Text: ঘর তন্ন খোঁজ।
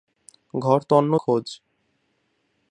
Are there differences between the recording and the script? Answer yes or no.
no